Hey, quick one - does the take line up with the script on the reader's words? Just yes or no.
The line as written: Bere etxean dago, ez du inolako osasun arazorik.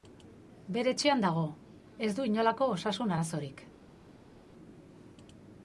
yes